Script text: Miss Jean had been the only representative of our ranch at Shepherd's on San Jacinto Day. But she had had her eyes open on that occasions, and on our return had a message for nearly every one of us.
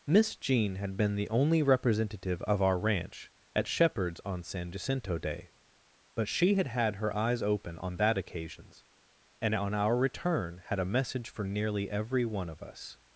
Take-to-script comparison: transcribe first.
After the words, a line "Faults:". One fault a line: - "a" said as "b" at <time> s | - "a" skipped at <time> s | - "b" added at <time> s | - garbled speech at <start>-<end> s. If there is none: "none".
Miss Jean had been the only representative of our ranch at Shepherd's on San Jacinto Day. But she had had her eyes open on that occasions, and on our return had a message for nearly every one of us.
Faults:
none